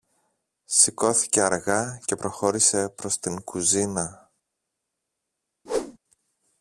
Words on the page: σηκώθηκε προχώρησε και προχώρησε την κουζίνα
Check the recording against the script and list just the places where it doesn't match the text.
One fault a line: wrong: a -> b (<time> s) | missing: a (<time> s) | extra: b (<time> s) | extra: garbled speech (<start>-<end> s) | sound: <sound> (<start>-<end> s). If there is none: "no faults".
wrong: προχώρησε -> αργά (1.4 s)
extra: προς (2.9 s)
sound: whoosh (5.7-6.0 s)